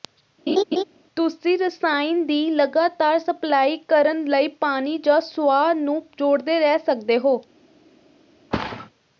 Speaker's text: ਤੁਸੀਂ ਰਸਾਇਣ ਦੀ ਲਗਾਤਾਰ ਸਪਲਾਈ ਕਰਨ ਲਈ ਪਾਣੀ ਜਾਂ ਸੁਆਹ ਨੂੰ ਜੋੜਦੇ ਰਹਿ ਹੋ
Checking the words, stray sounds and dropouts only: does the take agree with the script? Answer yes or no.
no